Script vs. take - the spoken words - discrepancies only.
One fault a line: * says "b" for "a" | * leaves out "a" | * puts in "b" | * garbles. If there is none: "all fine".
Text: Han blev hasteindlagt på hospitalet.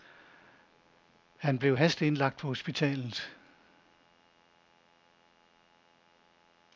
all fine